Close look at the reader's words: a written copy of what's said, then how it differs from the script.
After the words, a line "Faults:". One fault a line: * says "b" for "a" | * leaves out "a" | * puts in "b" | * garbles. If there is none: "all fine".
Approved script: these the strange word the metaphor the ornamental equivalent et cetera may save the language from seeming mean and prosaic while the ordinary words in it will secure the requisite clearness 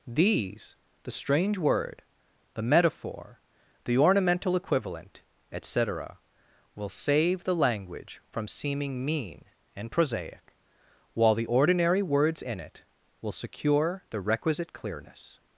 these the strange word the metaphor the ornamental equivalent et cetera will save the language from seeming mean and prosaic while the ordinary words in it will secure the requisite clearness
Faults:
* says "will" for "may"